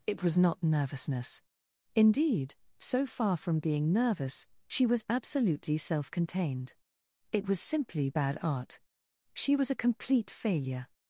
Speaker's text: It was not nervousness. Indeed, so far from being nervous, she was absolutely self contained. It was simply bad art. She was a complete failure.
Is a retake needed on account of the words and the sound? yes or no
no